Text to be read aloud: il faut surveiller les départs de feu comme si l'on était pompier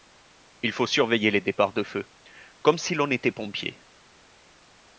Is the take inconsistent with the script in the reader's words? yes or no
no